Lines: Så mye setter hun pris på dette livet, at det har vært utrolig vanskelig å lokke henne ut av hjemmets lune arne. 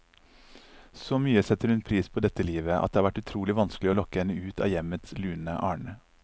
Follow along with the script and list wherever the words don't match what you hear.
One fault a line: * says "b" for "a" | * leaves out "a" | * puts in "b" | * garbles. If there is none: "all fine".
all fine